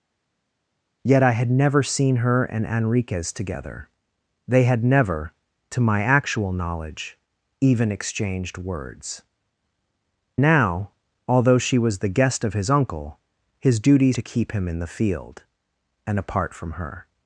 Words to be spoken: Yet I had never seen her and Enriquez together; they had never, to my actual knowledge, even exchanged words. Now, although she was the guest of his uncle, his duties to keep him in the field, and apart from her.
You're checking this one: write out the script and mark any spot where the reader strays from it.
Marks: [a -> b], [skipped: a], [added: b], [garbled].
Yet I had never seen her and Enriquez together; they had never, to my actual knowledge, even exchanged words. Now, although she was the guest of his uncle, his duties to keep him in the field, and apart from her.